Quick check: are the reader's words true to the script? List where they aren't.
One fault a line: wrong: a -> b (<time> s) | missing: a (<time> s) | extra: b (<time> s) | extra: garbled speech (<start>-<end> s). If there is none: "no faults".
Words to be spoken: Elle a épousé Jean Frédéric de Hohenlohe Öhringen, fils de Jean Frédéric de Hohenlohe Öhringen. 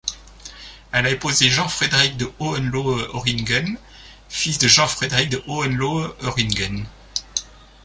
no faults